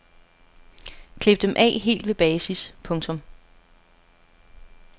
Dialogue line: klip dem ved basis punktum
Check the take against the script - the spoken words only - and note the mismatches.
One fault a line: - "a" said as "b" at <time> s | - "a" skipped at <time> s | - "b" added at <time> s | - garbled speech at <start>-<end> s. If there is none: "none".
- "af helt" added at 1.6 s